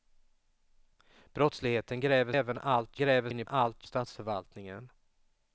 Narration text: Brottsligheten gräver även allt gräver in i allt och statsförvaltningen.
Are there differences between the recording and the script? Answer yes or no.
no